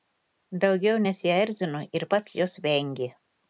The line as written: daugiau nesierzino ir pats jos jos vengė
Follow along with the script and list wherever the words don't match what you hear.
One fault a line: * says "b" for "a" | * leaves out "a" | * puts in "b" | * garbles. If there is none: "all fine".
* leaves out "jos"